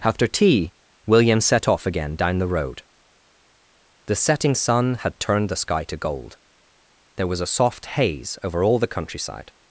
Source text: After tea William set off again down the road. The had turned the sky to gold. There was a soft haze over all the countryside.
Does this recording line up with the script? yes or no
no